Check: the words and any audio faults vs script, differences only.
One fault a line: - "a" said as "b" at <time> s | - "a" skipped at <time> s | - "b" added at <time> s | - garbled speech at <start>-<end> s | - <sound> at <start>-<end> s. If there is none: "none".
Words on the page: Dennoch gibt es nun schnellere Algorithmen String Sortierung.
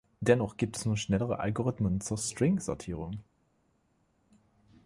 - "zur" added at 2.0 s